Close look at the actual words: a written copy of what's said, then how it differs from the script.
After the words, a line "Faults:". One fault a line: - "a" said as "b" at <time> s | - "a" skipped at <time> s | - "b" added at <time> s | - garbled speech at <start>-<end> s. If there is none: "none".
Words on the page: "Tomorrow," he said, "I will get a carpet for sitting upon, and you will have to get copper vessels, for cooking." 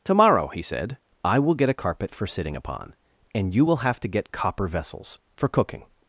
"Tomorrow," he said, "I will get a carpet for sitting upon, and you will have to get copper vessels, for cooking."
Faults:
none